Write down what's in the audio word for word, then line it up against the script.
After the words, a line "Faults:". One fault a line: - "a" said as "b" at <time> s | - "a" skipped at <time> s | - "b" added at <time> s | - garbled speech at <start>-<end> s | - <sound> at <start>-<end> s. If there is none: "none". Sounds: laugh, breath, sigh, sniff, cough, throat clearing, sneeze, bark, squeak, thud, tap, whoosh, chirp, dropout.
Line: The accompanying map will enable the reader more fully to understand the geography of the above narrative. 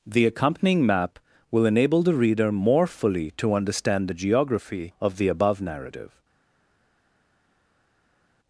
The accompanying map will enable the reader more fully to understand the geography of the above narrative.
Faults:
none